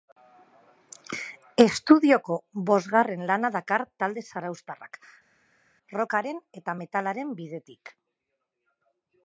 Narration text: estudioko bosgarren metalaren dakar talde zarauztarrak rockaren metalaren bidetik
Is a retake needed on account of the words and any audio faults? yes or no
yes